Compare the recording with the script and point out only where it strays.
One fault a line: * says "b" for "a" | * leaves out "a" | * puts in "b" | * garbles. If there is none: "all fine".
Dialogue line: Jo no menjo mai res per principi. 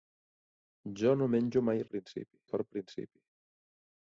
* says "principi" for "res"